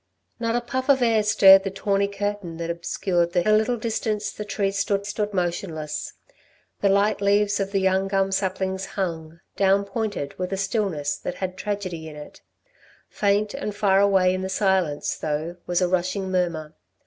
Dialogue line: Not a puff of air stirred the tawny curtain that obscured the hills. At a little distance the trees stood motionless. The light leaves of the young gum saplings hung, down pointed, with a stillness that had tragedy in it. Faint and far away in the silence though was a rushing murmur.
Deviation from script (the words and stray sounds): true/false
true